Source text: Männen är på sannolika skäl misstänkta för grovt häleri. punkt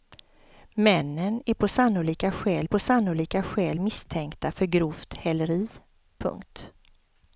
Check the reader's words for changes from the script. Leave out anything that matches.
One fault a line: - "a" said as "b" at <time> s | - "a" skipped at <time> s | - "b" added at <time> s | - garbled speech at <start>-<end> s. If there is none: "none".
- "på sannolika skäl" added at 2.6 s